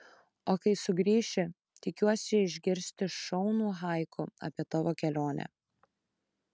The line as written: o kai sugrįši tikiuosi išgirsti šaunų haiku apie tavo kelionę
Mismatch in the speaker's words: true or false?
false